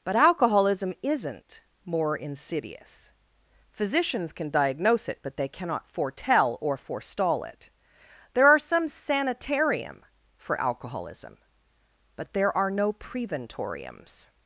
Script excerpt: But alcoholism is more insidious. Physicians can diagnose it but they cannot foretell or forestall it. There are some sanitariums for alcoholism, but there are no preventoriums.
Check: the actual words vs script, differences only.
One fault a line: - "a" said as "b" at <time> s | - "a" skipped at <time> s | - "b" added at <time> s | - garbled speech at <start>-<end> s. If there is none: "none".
- "is" said as "isn't" at 1.0 s
- "sanitariums" said as "sanitarium" at 8.9 s